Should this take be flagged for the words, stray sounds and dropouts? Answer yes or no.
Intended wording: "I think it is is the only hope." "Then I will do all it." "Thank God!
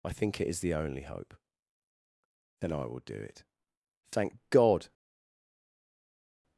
yes